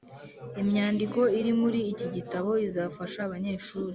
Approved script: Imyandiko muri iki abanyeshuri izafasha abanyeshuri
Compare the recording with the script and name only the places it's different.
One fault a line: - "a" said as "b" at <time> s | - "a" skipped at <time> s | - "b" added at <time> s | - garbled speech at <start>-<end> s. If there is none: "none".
- "iri" added at 1.4 s
- "abanyeshuri" said as "gitabo" at 2.1 s